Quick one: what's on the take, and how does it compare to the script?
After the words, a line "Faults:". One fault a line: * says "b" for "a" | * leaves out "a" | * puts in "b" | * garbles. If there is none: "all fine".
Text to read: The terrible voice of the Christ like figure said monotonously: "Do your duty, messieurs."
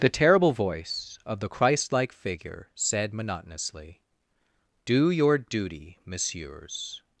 The terrible voice of the Christ like figure said monotonously: "Do your duty, messieurs."
Faults:
all fine